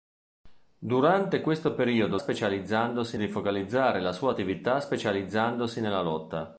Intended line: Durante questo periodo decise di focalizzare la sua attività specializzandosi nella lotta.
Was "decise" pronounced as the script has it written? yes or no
no